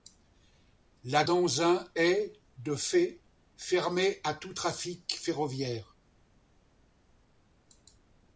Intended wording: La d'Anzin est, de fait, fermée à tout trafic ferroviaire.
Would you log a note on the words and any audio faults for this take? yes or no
no